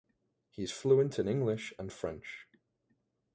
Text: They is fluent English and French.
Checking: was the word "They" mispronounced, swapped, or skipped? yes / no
yes